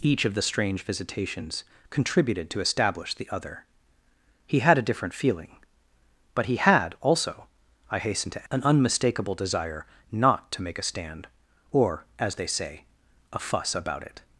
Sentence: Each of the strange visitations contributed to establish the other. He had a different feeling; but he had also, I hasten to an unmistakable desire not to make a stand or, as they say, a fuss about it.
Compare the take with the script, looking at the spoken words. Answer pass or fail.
pass